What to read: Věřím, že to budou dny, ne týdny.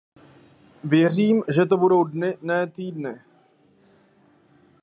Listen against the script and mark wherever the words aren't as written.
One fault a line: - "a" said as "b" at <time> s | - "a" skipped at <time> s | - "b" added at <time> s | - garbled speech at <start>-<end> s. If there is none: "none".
none